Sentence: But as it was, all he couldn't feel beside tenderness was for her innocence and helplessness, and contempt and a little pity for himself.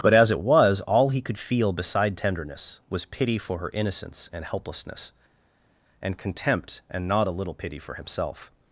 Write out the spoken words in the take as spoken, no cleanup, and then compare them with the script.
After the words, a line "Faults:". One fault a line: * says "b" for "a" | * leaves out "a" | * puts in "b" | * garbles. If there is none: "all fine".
But as it was, all he could feel beside tenderness was pity for her innocence and helplessness, and contempt and not a little pity for himself.
Faults:
* says "could" for "couldn't"
* puts in "pity"
* puts in "not"